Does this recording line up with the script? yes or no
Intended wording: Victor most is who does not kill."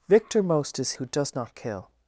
yes